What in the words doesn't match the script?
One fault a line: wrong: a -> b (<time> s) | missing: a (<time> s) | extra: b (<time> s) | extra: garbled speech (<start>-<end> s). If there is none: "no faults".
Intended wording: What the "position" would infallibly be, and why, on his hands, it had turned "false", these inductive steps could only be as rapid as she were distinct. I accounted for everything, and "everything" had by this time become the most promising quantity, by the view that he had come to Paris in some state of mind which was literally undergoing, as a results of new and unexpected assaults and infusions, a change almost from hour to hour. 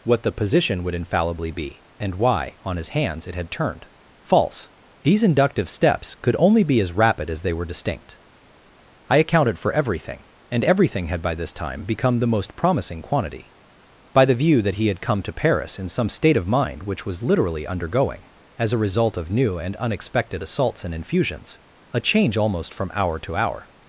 wrong: she -> they (7.4 s)
wrong: results -> result (18.8 s)